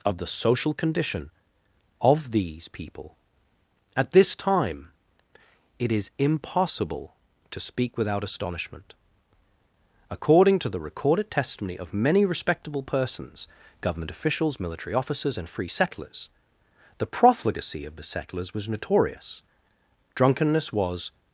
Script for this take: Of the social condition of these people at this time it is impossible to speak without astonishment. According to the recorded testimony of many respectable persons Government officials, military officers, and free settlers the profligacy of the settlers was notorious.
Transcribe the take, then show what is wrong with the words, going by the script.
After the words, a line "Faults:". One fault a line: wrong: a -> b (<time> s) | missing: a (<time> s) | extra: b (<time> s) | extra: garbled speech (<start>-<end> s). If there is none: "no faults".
Of the social condition of these people at this time it is impossible to speak without astonishment. According to the recorded testimony of many respectable persons Government officials, military officers, and free settlers the profligacy of the settlers was notorious. Drunkenness was
Faults:
extra: Drunkenness was (20.2 s)